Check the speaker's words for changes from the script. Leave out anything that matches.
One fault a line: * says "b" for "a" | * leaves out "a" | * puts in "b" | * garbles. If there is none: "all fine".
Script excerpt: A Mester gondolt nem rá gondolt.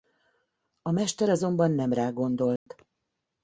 * says "azonban" for "gondolt"